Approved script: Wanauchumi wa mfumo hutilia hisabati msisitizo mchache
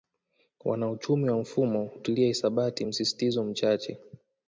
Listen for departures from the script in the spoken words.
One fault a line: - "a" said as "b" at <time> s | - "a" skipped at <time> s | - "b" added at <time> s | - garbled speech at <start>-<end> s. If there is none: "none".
none